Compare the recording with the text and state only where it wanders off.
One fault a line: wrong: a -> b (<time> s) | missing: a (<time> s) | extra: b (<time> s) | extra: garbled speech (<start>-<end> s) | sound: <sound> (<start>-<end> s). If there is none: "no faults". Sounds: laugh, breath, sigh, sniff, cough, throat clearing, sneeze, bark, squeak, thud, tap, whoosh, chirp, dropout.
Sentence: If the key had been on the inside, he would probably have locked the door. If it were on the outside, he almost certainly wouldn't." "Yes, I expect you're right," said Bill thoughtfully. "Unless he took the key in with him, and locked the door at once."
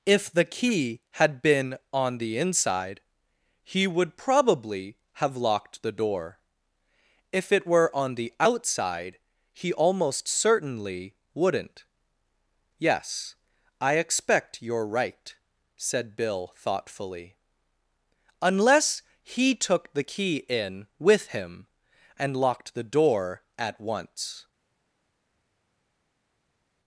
no faults